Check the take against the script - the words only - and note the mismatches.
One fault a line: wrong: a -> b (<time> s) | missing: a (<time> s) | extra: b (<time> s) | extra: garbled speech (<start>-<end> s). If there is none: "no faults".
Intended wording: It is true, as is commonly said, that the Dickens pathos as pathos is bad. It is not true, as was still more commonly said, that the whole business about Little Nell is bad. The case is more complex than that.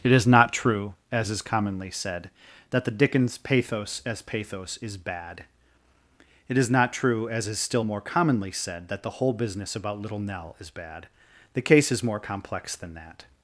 extra: not (0.2 s)
wrong: was -> is (7.5 s)